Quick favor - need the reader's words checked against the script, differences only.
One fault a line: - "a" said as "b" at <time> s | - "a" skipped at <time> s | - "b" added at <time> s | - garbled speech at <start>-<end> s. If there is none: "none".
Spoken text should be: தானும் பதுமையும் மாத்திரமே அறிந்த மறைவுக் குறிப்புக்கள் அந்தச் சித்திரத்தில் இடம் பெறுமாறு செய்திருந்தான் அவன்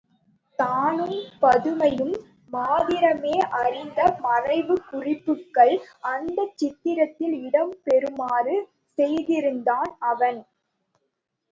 none